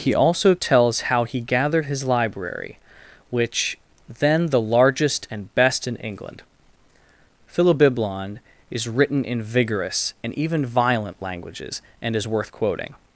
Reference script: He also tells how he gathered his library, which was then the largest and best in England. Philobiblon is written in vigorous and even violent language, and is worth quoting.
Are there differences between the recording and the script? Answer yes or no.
yes